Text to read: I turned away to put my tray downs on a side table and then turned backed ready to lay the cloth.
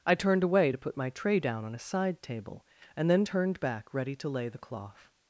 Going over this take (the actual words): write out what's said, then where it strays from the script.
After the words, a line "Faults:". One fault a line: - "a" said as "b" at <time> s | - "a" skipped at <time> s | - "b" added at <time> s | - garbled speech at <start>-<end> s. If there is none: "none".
I turned away to put my tray down on a side table and then turned back ready to lay the cloth.
Faults:
- "downs" said as "down" at 1.4 s
- "backed" said as "back" at 3.6 s